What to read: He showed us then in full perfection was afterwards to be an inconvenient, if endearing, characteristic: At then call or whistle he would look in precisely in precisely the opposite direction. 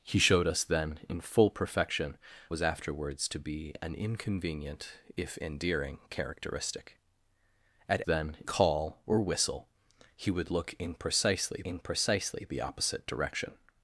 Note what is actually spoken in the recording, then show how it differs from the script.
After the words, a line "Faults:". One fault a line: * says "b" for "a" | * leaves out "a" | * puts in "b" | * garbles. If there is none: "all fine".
He showed us then in full perfection was afterwards to be an inconvenient, if endearing, characteristic: At then call or whistle he would look in precisely in precisely the opposite direction.
Faults:
all fine